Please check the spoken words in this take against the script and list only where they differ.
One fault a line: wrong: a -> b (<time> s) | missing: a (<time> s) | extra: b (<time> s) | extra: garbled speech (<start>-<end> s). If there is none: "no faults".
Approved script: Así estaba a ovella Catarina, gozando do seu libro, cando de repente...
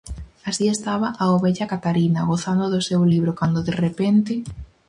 no faults